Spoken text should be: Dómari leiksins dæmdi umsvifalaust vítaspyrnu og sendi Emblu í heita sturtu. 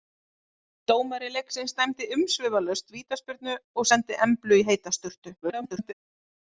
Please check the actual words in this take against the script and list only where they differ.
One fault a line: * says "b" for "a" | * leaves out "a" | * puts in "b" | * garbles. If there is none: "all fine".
* garbles